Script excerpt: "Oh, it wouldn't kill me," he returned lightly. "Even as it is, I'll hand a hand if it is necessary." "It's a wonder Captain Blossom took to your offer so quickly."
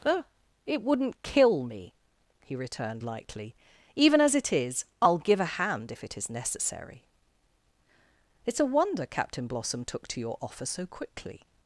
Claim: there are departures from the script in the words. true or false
true